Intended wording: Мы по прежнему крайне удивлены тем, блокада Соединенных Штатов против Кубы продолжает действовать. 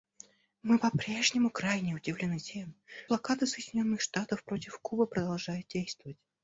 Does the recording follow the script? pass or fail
pass